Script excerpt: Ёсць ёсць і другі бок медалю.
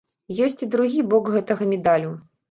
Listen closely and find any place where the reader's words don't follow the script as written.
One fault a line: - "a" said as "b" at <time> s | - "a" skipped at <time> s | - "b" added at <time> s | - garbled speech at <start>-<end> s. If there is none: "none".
- "ёсць" skipped at 0.6 s
- "гэтага" added at 1.4 s